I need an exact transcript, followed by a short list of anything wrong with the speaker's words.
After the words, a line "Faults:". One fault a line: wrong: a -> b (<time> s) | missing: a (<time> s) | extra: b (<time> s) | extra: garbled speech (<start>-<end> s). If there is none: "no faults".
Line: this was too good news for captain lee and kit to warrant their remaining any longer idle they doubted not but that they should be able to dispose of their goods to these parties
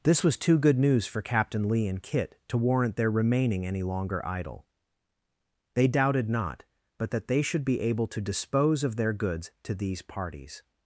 this was too good news for captain lee and kit to warrant their remaining any longer idle they doubted not but that they should be able to dispose of their goods to these parties
Faults:
no faults